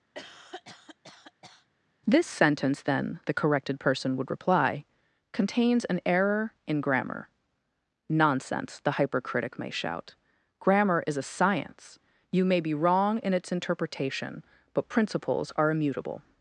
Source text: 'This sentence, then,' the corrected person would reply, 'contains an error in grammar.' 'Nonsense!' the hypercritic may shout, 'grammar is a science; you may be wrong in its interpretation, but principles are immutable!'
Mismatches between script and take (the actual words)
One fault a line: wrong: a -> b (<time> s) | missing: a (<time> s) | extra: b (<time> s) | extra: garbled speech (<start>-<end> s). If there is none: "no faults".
no faults